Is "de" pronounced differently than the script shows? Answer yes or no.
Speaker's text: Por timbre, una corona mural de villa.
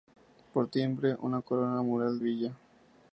yes